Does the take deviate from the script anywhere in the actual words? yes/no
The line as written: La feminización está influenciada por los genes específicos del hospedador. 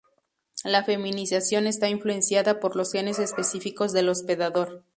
no